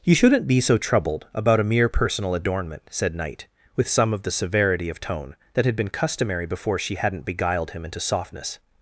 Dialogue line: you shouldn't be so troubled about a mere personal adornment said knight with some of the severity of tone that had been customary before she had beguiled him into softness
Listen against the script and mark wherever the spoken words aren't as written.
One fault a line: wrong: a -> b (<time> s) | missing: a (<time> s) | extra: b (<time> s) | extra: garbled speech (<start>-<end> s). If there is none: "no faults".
wrong: had -> hadn't (7.0 s)